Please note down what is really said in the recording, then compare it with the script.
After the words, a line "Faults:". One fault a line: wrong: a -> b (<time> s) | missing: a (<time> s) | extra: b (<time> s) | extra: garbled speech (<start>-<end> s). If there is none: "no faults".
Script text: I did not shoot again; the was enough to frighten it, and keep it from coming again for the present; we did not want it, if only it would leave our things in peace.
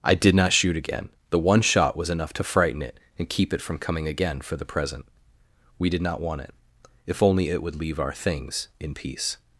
I did not shoot again; the one shot was enough to frighten it, and keep it from coming again for the present; we did not want it, if only it would leave our things in peace.
Faults:
extra: one shot (1.4 s)